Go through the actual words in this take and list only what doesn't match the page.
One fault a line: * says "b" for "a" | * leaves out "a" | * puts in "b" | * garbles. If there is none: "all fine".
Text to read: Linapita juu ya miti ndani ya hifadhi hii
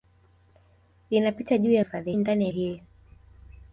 * says "hifadhi" for "miti"
* leaves out "hifadhi"